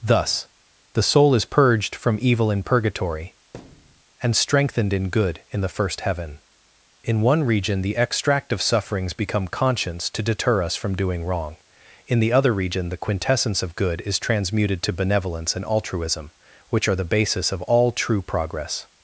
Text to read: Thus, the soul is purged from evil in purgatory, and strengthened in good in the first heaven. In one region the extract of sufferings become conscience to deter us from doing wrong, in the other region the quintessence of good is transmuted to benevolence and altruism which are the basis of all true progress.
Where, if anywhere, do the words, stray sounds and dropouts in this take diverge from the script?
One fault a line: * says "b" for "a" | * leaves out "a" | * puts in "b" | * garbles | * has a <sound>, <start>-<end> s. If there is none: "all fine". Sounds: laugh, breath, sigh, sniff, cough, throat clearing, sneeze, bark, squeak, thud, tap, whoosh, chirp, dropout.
* has a thud, 3.5-4.0 s